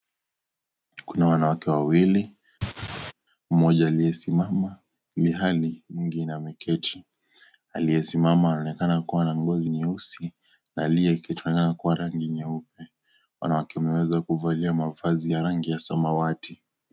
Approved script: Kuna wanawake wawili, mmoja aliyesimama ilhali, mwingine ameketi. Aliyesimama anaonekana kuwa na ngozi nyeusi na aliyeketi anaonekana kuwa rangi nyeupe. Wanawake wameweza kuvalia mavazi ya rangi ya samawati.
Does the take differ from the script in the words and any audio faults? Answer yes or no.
yes